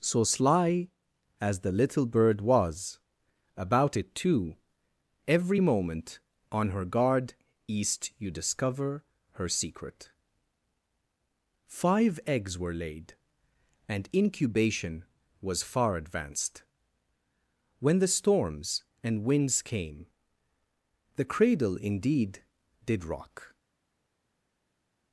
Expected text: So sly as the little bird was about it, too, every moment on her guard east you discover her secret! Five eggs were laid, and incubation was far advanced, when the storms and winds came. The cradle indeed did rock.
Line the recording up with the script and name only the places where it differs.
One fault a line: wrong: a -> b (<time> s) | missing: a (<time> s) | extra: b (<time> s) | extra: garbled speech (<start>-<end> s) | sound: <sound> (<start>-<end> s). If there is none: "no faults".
no faults